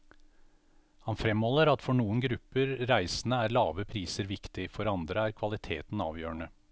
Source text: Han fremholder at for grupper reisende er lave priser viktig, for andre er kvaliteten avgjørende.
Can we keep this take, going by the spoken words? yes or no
no